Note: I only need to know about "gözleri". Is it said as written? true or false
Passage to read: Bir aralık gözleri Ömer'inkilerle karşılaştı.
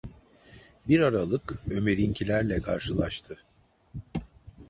false